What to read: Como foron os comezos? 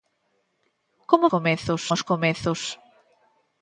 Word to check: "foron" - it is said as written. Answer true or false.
false